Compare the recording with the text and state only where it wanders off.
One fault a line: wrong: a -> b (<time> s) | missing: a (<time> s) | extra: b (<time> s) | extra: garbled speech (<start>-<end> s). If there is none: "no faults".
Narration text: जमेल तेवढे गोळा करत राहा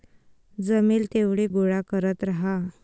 no faults